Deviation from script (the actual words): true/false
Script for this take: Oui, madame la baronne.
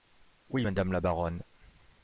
false